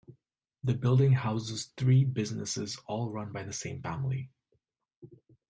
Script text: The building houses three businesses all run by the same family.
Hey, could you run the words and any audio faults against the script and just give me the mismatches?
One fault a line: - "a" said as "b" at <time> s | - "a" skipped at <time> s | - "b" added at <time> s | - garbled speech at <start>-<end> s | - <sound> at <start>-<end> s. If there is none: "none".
none